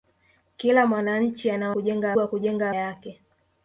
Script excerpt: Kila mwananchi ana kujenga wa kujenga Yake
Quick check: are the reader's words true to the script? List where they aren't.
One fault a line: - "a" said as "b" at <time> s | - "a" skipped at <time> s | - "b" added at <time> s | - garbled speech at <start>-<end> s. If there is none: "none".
none